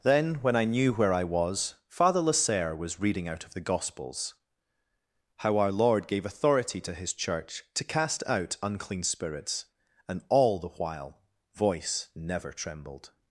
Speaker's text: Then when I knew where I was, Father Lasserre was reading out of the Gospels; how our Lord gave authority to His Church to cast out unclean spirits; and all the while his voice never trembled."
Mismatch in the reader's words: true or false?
true